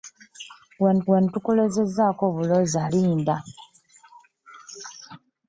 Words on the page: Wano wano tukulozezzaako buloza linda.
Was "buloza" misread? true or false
false